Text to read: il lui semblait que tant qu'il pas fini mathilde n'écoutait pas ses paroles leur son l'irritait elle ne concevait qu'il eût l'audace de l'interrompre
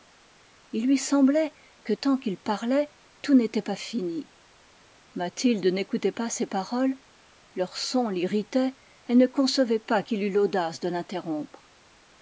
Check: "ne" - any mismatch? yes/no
no